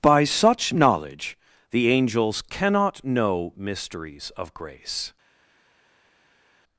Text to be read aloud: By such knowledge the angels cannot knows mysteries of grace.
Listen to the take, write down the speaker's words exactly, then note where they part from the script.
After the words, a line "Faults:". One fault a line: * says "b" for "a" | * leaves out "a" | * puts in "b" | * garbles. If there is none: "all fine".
By such knowledge the angels cannot know mysteries of grace.
Faults:
* says "know" for "knows"